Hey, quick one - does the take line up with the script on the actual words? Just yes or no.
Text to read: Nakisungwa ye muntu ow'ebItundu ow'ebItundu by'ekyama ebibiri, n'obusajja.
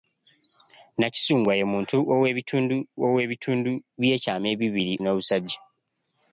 yes